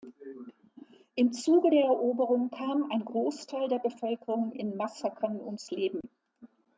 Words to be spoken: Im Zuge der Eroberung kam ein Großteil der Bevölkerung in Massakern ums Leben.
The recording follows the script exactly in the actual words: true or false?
true